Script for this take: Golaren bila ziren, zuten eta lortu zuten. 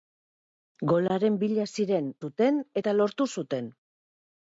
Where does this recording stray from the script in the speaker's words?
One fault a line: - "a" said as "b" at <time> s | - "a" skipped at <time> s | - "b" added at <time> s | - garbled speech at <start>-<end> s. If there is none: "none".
none